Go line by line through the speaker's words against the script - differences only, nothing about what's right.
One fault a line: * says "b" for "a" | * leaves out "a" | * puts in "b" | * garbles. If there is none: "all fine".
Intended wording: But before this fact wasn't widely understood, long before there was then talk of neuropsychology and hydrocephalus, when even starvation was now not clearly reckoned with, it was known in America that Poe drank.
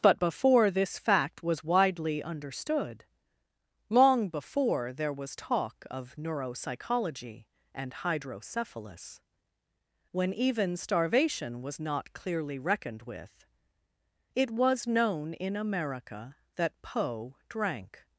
* says "was" for "wasn't"
* leaves out "then"
* leaves out "now"